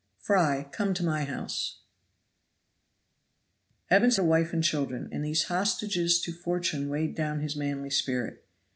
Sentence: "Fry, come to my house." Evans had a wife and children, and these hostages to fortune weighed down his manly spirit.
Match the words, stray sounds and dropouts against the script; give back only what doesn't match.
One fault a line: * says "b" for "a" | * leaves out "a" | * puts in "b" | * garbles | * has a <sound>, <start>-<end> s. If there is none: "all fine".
* leaves out "had"